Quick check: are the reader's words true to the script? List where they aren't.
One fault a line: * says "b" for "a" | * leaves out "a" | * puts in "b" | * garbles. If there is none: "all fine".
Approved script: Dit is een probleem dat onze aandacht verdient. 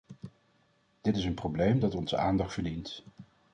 all fine